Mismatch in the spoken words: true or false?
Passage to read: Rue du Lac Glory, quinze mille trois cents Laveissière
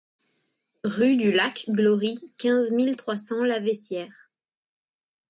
false